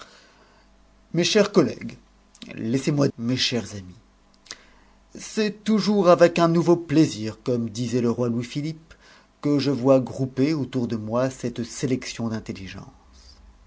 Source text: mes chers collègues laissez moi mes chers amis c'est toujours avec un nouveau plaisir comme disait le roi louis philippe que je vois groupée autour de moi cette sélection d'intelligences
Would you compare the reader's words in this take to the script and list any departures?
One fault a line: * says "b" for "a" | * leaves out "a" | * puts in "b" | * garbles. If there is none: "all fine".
all fine